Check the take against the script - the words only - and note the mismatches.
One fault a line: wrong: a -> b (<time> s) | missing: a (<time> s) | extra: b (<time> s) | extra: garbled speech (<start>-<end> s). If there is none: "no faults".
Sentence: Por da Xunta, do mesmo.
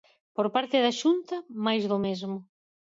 extra: parte (0.6 s)
extra: máis (1.6 s)